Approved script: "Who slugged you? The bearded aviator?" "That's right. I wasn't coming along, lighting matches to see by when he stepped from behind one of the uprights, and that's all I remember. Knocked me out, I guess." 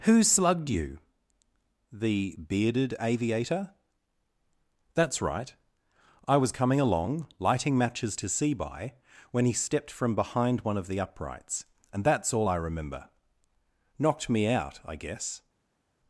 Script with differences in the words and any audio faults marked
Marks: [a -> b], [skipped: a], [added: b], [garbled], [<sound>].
"Who slugged you? The bearded aviator?" "That's right. I [wasn't -> was] coming along, lighting matches to see by when he stepped from behind one of the uprights, and that's all I remember. Knocked me out, I guess."